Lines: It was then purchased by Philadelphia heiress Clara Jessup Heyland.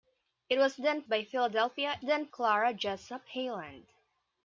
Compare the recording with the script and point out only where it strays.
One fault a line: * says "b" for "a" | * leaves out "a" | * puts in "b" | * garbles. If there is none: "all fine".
* leaves out "purchased"
* says "then" for "heiress"